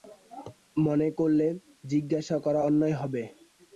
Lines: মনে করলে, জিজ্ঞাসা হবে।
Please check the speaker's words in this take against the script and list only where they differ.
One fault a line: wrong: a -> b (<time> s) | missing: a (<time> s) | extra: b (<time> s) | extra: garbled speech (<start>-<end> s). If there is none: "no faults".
extra: করা অন্যায় (2.5 s)